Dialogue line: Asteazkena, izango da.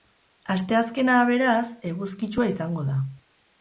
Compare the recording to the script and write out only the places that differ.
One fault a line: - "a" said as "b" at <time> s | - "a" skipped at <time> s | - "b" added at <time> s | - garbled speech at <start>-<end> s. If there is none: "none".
- "beraz eguzkitsua" added at 1.3 s